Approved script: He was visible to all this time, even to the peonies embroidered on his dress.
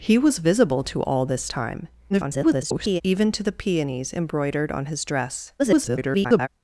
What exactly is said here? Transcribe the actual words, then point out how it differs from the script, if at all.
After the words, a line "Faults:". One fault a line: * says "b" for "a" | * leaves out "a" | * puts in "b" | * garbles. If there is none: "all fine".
He was visible to all this time, [garbled] even to the peonies embroidered on his dress. [garbled]
Faults:
* garbles
* garbles